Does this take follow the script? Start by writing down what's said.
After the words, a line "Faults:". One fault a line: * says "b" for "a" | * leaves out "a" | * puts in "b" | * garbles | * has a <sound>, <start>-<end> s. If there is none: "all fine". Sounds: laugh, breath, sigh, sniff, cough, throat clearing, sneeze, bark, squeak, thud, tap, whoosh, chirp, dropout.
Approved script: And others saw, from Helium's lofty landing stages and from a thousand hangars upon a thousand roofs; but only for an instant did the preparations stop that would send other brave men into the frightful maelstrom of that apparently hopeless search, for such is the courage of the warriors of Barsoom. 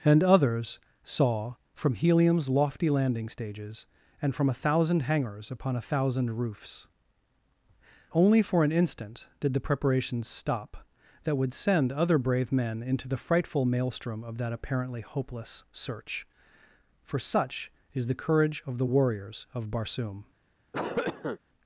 And others saw, from Helium's lofty landing stages and from a thousand hangars upon a thousand roofs; only for an instant did the preparations stop that would send other brave men into the frightful maelstrom of that apparently hopeless search, for such is the courage of the warriors of Barsoom.
Faults:
* leaves out "but"
* has a cough, 20.7-21.4 s